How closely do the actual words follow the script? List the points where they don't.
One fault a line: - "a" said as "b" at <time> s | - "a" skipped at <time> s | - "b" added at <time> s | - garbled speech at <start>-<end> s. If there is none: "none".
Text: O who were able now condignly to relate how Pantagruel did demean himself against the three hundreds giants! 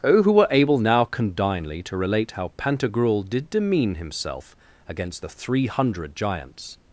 - "hundreds" said as "hundred" at 5.7 s